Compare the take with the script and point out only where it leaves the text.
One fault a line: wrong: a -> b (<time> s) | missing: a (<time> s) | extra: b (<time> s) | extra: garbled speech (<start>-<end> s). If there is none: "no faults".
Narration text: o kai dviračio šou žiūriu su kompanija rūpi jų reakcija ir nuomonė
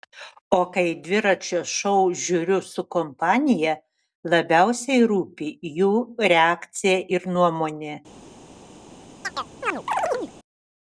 extra: labiausiai (4.4 s)